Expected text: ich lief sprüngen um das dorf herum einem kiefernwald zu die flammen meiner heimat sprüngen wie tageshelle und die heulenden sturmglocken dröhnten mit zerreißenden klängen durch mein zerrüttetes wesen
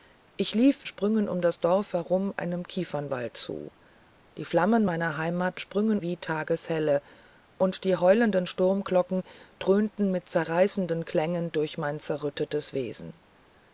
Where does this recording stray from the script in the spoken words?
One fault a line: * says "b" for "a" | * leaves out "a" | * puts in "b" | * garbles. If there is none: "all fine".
all fine